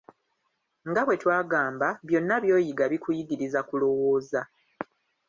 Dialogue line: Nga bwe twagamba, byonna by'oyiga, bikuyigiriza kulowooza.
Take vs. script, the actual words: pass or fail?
pass